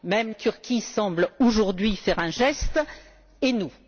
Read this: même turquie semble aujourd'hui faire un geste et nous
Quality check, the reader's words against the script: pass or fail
pass